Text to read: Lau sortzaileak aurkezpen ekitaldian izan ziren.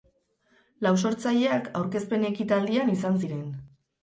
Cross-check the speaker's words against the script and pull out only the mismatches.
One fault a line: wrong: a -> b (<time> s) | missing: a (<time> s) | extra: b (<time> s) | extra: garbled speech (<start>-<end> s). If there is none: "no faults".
no faults